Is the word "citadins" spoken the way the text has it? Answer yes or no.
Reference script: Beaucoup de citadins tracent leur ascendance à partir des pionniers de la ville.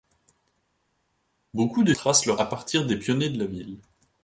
no